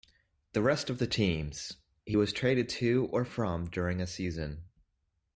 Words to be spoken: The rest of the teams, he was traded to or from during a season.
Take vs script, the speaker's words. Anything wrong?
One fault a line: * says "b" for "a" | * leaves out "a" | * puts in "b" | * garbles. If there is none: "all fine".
all fine